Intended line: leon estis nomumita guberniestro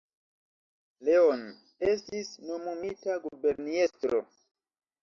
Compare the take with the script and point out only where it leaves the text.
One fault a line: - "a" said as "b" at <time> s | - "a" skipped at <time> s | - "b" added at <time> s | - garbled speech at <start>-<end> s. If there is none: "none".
none